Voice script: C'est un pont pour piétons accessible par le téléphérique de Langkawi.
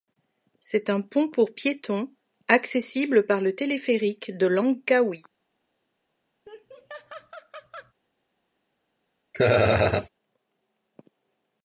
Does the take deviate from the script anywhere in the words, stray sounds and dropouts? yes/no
yes